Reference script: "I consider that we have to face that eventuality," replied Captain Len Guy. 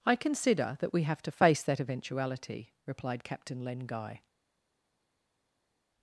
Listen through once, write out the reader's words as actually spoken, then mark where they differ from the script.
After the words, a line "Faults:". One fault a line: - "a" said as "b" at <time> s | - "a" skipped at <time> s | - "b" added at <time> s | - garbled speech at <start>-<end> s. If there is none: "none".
"I consider that we have to face that eventuality," replied Captain Len Guy.
Faults:
none